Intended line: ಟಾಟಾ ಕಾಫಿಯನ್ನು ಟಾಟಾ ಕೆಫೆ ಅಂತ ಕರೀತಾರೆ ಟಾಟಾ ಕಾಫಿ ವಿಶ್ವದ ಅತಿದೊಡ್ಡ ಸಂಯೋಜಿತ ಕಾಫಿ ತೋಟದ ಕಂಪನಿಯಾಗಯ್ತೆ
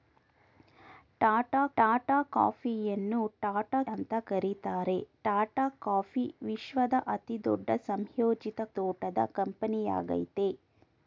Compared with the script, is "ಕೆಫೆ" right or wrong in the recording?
wrong